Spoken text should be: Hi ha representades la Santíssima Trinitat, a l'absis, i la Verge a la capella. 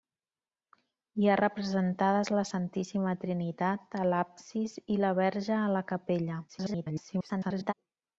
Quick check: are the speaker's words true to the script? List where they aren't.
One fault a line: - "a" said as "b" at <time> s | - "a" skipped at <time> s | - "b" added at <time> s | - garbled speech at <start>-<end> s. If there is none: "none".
- garbled speech at 6.5-7.7 s